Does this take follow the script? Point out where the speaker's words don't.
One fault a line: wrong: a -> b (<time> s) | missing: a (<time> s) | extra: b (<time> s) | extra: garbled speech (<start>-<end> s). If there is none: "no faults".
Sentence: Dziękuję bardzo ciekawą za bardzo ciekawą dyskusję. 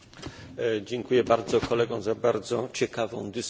wrong: ciekawą -> kolegom (1.6 s)